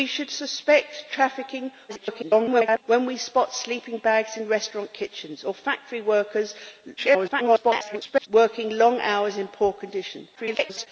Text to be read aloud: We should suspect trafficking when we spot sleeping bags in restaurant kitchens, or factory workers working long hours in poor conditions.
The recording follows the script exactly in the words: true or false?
false